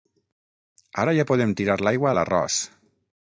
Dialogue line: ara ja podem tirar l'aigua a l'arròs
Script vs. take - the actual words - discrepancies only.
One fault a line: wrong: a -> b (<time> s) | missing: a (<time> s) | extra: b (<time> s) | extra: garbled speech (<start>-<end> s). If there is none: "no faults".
no faults